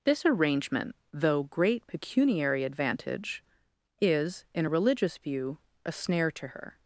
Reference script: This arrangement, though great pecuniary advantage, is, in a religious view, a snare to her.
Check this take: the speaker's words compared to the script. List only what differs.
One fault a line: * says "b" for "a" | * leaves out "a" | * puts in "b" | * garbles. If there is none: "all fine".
all fine